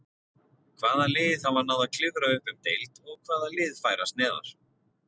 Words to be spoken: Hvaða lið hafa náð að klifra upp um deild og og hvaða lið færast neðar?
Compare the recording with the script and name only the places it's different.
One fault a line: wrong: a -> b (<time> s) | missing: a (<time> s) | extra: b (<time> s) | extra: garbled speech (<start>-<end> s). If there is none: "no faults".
missing: og (3.2 s)